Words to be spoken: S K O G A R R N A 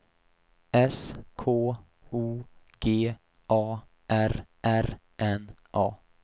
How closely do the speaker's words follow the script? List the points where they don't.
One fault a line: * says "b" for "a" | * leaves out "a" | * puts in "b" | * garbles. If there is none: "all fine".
all fine